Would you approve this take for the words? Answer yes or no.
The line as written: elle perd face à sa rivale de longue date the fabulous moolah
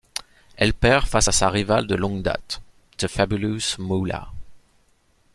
yes